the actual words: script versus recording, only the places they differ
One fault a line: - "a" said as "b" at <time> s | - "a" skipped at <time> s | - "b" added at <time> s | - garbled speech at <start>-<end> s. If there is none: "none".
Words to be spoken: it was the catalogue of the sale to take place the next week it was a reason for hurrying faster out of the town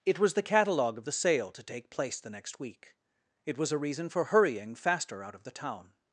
none